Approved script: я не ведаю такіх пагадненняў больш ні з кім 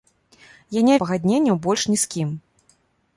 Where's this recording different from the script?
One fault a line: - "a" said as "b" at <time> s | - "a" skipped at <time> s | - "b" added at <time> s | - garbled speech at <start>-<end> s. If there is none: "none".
- "ведаю такіх" skipped at 0.9 s